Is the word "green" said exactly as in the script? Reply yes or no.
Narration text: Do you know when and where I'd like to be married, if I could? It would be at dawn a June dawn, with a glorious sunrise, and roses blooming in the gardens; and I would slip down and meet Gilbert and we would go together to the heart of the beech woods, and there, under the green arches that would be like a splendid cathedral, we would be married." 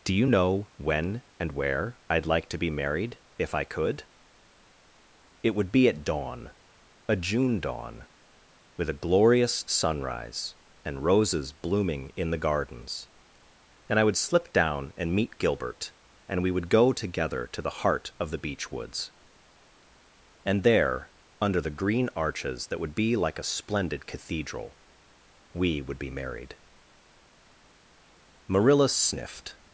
yes